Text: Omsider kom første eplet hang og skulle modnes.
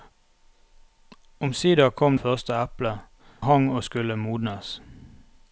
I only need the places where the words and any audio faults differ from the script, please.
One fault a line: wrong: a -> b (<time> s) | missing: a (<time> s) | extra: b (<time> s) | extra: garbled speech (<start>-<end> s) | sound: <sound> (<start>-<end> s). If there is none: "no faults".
no faults